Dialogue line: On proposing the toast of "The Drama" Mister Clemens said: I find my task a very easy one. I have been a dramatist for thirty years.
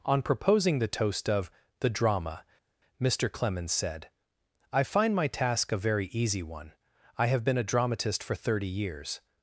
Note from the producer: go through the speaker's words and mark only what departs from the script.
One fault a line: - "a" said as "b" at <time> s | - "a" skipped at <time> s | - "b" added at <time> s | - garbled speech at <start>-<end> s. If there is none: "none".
none